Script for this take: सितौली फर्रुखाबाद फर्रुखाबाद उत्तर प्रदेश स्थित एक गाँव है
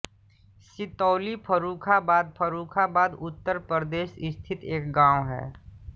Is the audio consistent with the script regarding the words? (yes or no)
yes